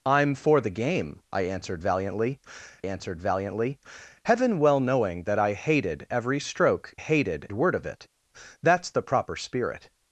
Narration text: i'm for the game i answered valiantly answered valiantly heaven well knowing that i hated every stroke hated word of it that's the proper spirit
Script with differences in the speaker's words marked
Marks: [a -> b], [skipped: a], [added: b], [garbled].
i'm for the game i answered valiantly answered valiantly heaven well knowing that i hated every stroke hated word of it that's the proper spirit